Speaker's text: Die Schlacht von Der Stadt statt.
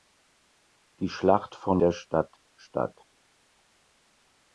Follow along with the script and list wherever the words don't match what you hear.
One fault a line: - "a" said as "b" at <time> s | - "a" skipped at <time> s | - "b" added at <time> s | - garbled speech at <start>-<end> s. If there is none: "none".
none